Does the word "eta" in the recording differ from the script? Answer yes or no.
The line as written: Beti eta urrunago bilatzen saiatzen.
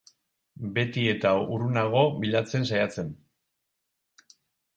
no